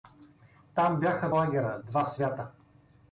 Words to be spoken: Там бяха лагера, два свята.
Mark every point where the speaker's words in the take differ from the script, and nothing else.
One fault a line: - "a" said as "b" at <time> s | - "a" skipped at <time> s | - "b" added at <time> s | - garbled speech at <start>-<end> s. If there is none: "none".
none